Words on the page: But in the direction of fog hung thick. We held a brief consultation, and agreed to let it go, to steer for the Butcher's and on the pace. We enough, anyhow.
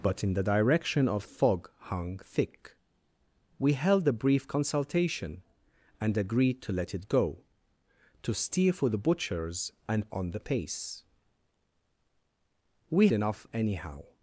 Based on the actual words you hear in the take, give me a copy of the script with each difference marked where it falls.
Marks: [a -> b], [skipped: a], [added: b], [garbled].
But in the direction of fog hung thick. We held a brief consultation, and agreed to let it go, to steer for the Butcher's and on the pace. We enough, anyhow.